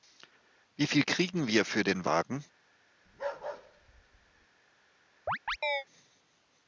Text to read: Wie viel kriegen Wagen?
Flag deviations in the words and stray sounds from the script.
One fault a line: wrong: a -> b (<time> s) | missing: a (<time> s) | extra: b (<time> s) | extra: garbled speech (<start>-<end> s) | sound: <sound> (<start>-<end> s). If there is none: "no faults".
extra: wir für den (1.5 s)
sound: bark (3.1-4.5 s)
sound: chirp (5.3-5.8 s)